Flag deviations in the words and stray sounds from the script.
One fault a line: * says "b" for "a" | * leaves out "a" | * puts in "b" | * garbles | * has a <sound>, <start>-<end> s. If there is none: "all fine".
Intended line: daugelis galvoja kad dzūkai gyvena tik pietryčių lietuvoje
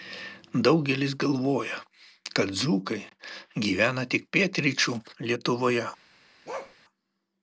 * has a bark, 6.5-6.8 s